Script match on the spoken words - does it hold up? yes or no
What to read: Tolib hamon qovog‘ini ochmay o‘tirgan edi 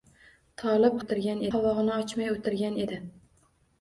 no